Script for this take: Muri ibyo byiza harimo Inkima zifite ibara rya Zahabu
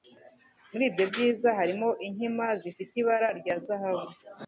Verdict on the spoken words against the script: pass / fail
pass